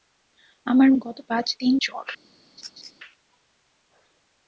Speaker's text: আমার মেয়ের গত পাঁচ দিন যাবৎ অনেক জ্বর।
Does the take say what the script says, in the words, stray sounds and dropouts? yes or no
no